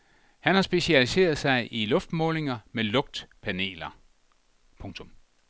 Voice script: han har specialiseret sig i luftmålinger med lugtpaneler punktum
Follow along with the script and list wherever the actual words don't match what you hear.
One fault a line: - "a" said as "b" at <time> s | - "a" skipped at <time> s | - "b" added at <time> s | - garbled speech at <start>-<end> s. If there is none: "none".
none